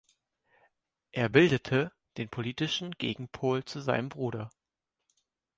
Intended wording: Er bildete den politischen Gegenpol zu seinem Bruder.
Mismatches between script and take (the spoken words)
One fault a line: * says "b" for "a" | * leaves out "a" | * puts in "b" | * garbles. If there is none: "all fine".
all fine